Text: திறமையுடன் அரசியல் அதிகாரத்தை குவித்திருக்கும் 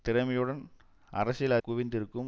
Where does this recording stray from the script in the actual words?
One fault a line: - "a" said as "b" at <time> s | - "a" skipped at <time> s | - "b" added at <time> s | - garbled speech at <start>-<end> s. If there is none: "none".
- "அதிகாரத்தை" skipped at 1.6 s